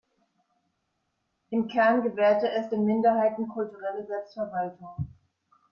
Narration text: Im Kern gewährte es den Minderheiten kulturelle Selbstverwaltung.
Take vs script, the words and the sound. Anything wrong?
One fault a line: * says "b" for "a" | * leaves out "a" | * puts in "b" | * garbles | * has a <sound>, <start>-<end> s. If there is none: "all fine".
all fine